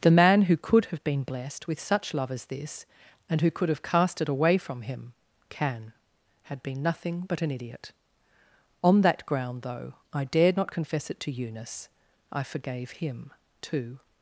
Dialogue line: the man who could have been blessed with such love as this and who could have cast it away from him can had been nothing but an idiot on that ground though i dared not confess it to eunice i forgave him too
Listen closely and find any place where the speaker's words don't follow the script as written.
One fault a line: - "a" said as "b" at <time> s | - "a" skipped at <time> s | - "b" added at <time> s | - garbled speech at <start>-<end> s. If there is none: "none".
none